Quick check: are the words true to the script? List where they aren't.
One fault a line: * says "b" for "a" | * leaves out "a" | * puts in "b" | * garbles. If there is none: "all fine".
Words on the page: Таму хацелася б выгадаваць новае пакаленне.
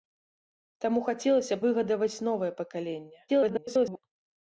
* leaves out "б"
* garbles